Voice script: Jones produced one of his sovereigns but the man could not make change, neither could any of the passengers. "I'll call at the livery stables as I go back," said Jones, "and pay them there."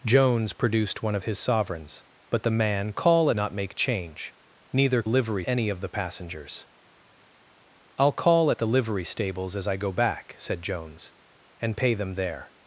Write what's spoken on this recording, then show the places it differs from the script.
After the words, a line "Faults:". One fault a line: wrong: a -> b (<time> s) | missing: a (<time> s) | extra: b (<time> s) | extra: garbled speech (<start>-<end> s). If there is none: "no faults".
Jones produced one of his sovereigns but the man call not make change, neither livery any of the passengers. "I'll call at the livery stables as I go back," said Jones, "and pay them there."
Faults:
wrong: could -> call (2.9 s)
wrong: could -> livery (5.1 s)